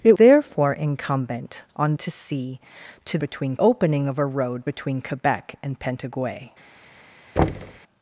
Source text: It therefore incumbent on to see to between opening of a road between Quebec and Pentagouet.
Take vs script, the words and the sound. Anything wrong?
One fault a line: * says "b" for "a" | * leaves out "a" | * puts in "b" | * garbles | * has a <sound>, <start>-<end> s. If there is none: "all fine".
* has a thud, 7.4-7.8 s